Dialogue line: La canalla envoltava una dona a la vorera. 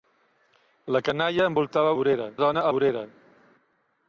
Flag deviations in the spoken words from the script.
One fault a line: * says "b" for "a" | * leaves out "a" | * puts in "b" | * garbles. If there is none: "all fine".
* says "vorera" for "una"
* leaves out "la"